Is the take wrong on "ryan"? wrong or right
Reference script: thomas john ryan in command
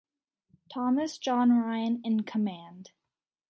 right